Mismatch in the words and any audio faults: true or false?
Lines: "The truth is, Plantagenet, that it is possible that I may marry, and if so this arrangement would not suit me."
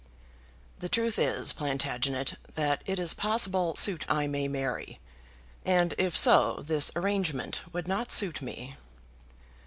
true